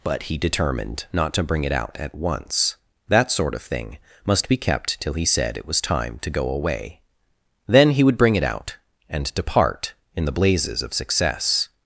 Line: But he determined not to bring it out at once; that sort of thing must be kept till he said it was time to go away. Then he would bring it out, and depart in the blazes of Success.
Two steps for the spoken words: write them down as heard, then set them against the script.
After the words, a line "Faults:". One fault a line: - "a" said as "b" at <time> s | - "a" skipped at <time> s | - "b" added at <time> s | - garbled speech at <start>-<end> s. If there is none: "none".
But he determined not to bring it out at once; that sort of thing must be kept till he said it was time to go away. Then he would bring it out, and depart in the blazes of Success.
Faults:
none